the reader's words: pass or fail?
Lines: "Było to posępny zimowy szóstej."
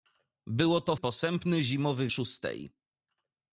pass